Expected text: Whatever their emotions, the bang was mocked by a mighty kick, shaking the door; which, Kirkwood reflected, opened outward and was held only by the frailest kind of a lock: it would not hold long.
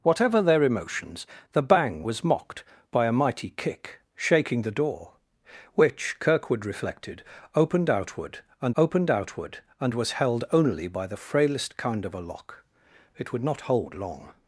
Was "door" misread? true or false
false